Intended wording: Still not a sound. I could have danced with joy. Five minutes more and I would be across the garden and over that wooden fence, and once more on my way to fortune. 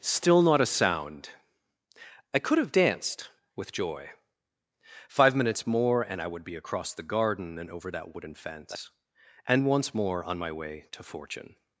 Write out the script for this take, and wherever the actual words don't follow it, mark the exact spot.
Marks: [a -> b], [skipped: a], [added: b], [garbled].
Still not a sound. I could have danced with joy. Five minutes more and I would be across the garden and over that wooden fence, and once more on my way to fortune.